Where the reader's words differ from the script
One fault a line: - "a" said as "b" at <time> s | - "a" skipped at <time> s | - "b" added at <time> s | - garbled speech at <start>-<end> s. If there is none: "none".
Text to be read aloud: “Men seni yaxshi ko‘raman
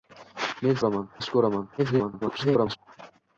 - "seni" said as "ko‘raman" at 0.8 s
- garbled speech at 1.8-2.8 s